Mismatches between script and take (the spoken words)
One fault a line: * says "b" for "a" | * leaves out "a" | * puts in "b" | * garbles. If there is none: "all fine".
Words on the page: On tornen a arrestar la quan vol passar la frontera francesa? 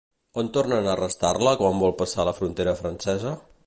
all fine